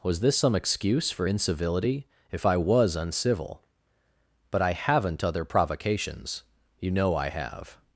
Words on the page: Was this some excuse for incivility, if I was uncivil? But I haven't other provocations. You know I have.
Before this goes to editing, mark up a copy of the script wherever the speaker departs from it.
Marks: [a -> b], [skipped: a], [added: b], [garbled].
Was this some excuse for incivility, if I was uncivil? But I haven't other provocations. You know I have.